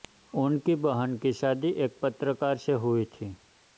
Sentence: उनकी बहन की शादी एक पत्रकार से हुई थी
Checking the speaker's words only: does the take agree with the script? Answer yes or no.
yes